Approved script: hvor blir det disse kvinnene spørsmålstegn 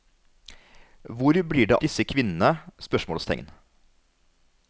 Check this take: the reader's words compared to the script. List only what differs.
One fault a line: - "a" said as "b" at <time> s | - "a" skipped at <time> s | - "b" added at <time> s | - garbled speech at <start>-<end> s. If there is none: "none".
none